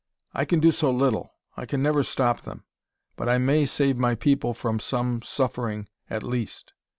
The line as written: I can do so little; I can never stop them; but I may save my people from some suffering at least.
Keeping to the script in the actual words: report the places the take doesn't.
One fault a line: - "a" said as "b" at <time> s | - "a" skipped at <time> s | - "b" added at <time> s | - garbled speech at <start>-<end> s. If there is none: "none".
none